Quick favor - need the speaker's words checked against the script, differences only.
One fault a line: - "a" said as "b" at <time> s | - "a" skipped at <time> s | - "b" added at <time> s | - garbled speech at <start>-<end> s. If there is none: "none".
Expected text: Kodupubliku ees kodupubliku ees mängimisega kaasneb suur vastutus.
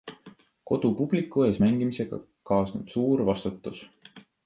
- "kodupubliku ees" skipped at 1.6 s